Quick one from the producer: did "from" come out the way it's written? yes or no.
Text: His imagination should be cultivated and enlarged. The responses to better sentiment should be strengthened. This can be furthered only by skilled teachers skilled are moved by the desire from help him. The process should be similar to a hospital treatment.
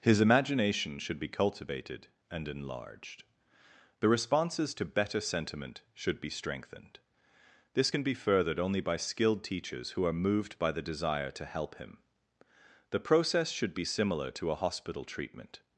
no